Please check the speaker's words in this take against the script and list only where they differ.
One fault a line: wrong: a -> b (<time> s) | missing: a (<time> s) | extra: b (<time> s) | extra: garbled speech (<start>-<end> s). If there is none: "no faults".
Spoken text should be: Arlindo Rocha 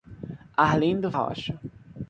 no faults